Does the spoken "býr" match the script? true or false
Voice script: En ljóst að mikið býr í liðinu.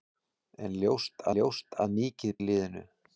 false